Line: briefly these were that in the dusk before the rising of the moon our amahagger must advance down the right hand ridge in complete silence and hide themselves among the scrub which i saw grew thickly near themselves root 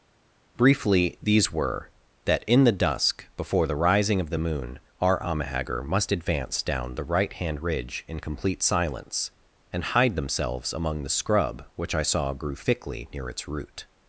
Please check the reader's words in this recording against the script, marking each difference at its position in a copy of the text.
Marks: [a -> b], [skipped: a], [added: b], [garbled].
briefly these were that in the dusk before the rising of the moon our amahagger must advance down the right hand ridge in complete silence and hide themselves among the scrub which i saw grew thickly near [themselves -> its] root